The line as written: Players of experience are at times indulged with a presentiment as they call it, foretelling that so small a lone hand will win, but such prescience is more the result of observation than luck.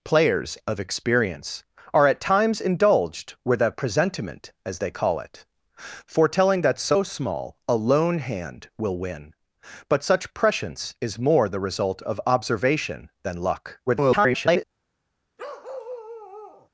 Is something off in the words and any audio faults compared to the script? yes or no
yes